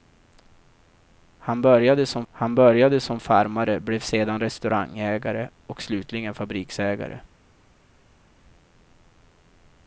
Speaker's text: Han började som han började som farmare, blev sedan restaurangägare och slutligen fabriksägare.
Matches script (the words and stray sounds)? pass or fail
pass